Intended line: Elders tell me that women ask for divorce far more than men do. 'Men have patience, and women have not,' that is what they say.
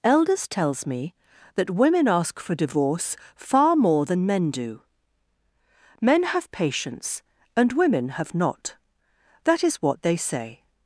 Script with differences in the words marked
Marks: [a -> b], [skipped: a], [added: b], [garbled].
Elders [tell -> tells] me that women ask for divorce far more than men do. 'Men have patience, and women have not,' that is what they say.